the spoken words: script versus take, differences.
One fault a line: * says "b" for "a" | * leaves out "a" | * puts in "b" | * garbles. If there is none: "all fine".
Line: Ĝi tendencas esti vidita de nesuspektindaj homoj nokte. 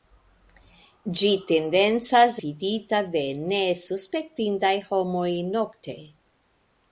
* leaves out "esti"